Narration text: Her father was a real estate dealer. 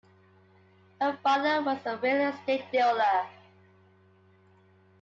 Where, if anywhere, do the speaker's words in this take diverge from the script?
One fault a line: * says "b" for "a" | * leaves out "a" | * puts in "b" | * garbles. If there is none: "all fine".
all fine